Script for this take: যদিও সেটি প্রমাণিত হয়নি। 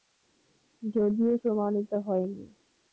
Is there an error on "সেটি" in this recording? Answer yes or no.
yes